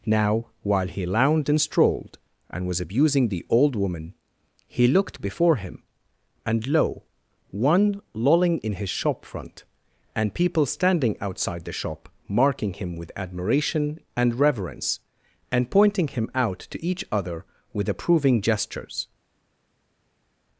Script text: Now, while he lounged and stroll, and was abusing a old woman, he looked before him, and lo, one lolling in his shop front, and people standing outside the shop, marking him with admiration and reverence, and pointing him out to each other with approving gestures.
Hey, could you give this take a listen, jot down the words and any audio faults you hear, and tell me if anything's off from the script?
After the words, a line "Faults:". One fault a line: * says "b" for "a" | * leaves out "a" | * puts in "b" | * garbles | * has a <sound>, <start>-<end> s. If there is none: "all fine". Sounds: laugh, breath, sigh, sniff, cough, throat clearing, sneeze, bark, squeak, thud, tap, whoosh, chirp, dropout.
Now, while he lounged and strolled, and was abusing the old woman, he looked before him, and lo, one lolling in his shop front, and people standing outside the shop, marking him with admiration and reverence, and pointing him out to each other with approving gestures.
Faults:
* says "strolled" for "stroll"
* says "the" for "a"